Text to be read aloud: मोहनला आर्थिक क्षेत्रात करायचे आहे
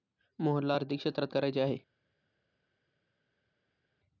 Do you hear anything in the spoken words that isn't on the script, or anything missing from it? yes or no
no